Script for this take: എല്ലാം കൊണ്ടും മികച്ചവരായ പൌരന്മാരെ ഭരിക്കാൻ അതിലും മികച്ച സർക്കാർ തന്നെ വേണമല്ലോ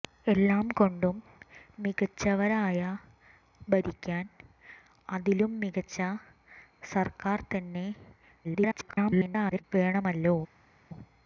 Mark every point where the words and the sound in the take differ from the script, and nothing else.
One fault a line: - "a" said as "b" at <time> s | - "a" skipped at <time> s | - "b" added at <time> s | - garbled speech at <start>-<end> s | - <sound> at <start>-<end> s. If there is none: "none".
- "പൌരന്മാരെ" skipped at 2.8 s
- garbled speech at 8.4-9.6 s